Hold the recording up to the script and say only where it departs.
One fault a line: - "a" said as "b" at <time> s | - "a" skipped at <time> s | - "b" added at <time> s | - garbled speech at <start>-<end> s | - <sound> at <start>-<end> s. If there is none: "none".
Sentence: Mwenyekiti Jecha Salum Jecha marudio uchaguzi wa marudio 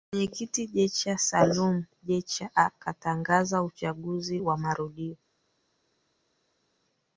- "marudio" said as "akatangaza" at 2.5 s